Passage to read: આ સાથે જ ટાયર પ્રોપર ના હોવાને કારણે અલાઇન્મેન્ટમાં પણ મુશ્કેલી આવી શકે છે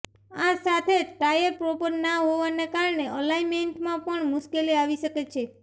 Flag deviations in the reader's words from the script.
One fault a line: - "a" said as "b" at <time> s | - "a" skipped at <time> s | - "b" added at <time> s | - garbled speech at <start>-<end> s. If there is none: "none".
none